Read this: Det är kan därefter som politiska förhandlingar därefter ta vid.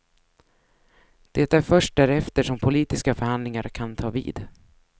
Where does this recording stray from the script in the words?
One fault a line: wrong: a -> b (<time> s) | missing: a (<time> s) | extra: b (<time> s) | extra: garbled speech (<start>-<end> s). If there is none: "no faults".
wrong: kan -> först (1.6 s)
wrong: därefter -> kan (3.6 s)